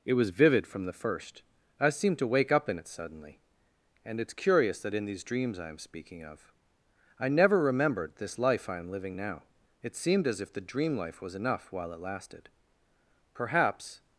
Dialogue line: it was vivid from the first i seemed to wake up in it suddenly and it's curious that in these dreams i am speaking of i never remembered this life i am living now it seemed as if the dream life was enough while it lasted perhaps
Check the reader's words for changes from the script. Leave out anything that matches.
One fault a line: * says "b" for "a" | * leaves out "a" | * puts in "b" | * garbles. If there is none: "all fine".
all fine